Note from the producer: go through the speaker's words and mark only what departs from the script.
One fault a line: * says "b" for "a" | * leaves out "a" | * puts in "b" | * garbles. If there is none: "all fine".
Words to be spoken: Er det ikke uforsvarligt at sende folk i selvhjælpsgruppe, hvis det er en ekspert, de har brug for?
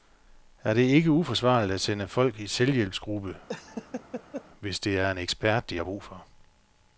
all fine